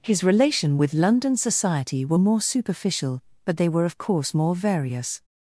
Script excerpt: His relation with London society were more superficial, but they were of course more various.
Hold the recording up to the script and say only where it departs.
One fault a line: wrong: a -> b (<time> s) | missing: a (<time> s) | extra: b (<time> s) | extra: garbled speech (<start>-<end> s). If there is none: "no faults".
no faults